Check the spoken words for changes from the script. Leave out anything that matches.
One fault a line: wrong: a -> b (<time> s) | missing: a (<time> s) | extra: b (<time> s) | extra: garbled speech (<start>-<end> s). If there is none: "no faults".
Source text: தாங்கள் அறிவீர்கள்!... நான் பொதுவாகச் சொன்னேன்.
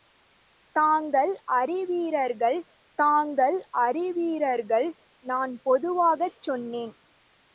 extra: தாங்கள் அறிவீர்கள் (3.0 s)